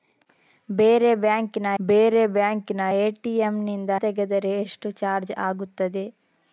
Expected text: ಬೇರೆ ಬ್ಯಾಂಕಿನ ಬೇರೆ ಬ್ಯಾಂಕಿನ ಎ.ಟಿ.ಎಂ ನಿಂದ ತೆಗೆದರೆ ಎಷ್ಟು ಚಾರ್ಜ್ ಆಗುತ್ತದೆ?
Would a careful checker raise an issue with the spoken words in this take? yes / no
no